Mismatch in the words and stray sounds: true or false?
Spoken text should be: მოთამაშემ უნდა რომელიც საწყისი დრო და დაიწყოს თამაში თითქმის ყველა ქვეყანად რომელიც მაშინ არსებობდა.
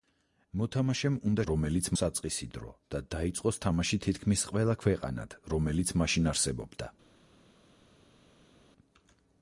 false